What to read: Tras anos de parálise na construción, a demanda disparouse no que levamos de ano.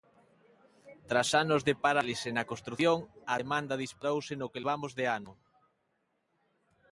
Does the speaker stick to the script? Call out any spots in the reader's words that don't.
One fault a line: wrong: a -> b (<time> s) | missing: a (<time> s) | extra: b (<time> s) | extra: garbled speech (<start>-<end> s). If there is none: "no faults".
no faults